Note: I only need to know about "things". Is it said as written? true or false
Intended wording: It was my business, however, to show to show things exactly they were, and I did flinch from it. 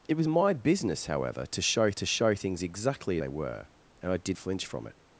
true